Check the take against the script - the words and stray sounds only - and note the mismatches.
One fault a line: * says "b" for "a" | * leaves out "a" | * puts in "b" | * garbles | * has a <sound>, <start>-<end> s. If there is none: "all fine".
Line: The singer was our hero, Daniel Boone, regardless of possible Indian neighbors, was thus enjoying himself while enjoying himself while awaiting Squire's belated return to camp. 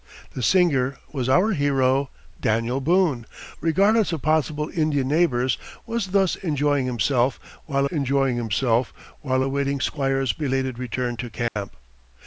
* has a dropout, 11.5-11.6 s